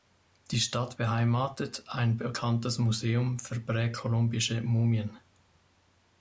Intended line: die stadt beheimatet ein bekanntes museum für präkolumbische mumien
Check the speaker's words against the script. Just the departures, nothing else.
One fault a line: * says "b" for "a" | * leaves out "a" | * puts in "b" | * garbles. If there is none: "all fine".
all fine